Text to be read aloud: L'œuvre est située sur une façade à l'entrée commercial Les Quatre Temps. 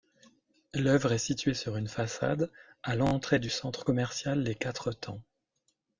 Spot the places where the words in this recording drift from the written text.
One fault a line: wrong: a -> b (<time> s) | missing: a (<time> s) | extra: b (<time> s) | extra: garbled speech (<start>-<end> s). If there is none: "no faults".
extra: du centre (3.4 s)